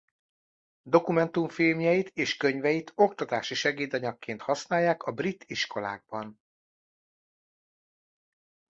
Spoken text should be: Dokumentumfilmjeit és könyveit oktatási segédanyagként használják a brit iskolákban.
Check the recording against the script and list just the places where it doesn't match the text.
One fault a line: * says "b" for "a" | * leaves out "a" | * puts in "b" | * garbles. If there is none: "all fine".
all fine